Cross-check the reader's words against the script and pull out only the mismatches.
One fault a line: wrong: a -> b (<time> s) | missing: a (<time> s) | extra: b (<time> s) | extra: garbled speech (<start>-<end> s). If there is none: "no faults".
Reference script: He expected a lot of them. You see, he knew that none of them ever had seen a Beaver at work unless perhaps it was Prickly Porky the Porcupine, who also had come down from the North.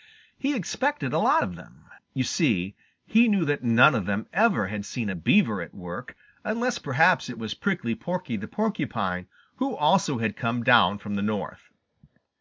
no faults